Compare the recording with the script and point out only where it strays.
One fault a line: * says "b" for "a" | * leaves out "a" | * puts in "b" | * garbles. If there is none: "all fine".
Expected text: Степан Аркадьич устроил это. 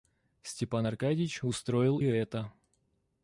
all fine